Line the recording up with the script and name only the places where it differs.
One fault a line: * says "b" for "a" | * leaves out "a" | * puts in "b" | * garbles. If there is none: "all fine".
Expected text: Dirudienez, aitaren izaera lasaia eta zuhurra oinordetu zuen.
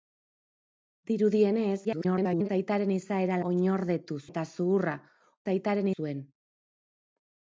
* garbles
* says "oinordetu" for "lasaia"
* says "aitaren" for "oinordetu"